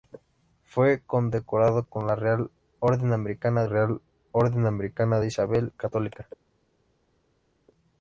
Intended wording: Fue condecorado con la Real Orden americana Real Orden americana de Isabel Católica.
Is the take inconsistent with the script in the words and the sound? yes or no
no